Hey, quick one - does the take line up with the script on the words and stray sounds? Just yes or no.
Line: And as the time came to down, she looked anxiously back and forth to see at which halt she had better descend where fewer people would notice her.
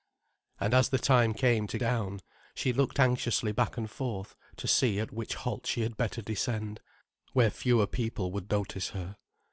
yes